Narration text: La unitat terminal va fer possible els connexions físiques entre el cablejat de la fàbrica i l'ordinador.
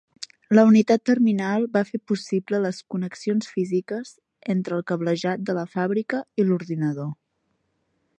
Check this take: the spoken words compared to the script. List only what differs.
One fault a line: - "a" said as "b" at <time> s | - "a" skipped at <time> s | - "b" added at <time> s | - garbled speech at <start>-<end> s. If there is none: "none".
- "els" said as "les" at 2.6 s